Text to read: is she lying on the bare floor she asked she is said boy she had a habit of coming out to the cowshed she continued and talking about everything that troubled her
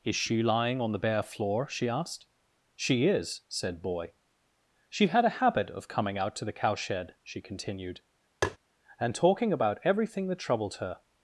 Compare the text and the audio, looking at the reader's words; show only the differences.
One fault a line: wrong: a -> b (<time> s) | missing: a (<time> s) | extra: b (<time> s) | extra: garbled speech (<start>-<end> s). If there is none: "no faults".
no faults